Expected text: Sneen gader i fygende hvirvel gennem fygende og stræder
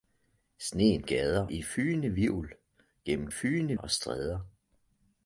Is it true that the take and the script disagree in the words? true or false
false